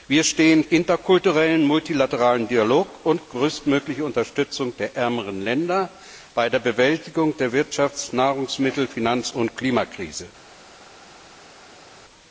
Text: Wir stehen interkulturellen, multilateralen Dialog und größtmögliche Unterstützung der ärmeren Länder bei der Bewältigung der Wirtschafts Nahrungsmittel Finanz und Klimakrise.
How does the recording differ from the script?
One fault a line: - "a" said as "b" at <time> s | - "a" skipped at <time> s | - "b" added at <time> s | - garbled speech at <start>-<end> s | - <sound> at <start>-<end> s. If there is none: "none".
none